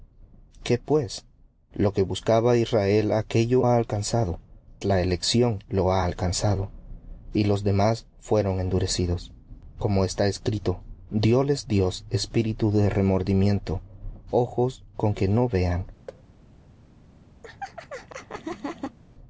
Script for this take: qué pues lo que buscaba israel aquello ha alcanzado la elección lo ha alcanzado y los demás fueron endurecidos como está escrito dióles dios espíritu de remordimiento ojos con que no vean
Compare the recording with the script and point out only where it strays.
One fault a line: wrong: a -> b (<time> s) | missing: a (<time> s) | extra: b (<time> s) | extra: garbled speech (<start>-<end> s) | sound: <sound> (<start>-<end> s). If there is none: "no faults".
sound: thud (16.1-16.2 s)
sound: laugh (17.4-19.0 s)